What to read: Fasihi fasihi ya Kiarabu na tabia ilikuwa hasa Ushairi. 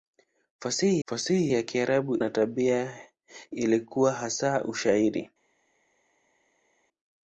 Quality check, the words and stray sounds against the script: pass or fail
pass